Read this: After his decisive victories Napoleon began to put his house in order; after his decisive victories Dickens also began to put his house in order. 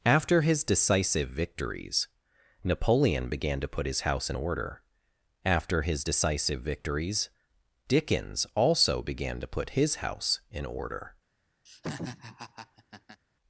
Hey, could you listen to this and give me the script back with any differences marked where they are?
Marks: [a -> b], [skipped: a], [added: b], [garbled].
After his decisive victories Napoleon began to put his house in order; after his decisive victories Dickens also began to put his house in order.